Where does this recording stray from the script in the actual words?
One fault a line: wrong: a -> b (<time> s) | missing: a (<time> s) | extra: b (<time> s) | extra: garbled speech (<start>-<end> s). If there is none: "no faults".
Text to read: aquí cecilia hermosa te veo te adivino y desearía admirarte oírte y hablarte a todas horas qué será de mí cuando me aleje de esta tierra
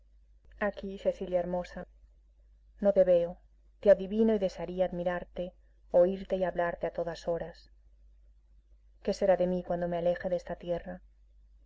extra: no (2.8 s)